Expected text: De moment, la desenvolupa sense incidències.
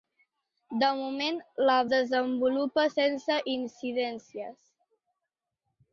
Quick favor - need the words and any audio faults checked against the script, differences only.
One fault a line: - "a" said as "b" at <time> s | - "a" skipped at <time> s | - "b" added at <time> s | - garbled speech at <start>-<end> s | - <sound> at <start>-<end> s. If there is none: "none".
none